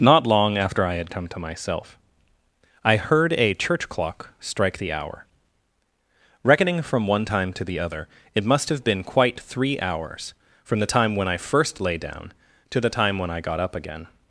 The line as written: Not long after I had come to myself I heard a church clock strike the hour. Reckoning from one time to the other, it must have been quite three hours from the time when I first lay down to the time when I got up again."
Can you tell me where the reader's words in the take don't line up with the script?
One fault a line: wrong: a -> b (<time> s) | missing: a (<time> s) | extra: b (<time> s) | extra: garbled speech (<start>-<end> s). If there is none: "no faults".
no faults